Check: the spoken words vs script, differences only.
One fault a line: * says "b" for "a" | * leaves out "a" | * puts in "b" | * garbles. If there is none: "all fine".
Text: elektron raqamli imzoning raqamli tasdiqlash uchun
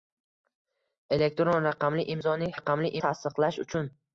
all fine